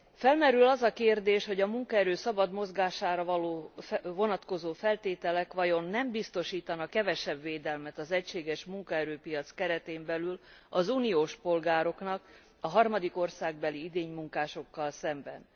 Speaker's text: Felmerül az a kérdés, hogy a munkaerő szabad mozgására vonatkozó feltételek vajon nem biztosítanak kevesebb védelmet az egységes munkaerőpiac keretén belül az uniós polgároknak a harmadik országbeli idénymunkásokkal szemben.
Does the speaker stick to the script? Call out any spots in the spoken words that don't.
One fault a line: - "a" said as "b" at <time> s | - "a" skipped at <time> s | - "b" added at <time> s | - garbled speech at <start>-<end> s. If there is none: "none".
none